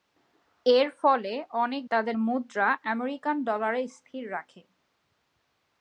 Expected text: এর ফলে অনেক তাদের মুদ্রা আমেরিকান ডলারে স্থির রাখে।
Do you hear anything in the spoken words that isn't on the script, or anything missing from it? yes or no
no